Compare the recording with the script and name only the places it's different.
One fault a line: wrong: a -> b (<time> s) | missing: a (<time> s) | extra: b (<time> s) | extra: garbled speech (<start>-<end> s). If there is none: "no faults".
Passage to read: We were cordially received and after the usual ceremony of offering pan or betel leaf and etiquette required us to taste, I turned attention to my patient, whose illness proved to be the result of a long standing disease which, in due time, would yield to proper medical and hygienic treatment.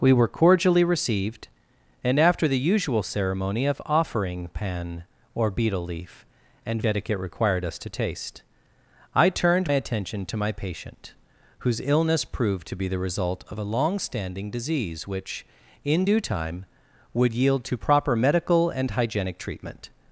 no faults